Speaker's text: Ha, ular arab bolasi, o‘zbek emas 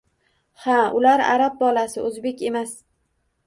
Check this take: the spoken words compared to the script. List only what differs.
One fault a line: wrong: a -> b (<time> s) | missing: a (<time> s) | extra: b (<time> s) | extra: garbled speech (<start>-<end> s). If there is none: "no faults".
no faults